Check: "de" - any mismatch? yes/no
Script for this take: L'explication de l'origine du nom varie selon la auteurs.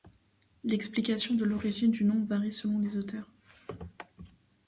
no